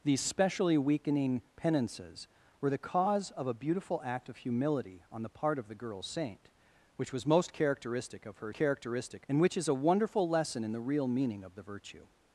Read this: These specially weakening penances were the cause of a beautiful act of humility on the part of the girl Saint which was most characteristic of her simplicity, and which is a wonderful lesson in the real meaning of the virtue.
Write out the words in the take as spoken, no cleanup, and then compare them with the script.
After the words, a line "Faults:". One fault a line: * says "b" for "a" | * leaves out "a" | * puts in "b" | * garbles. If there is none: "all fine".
These specially weakening penances were the cause of a beautiful act of humility on the part of the girl Saint which was most characteristic of her characteristic, and which is a wonderful lesson in the real meaning of the virtue.
Faults:
* says "characteristic" for "simplicity"